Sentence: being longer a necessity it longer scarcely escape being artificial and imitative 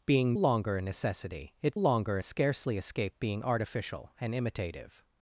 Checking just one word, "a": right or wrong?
right